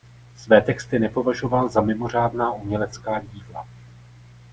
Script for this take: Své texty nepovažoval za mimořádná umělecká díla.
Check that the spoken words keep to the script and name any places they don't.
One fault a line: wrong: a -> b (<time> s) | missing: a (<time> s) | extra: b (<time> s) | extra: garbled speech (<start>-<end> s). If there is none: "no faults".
no faults